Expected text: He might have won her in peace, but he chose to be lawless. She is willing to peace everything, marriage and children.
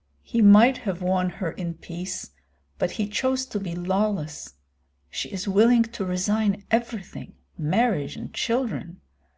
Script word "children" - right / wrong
right